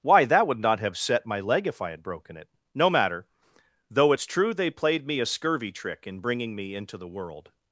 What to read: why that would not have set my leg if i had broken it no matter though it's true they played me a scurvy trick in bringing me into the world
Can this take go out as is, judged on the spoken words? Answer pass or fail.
pass